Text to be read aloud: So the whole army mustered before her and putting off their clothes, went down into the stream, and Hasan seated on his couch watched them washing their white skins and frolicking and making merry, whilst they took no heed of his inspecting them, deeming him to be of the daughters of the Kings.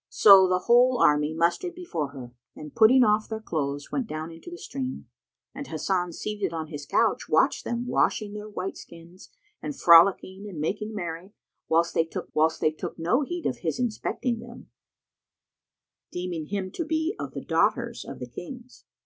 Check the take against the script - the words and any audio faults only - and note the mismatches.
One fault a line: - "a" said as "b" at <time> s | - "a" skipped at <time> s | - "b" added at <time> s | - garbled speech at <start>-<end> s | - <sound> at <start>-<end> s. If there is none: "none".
- "whilst they took" added at 12.3 s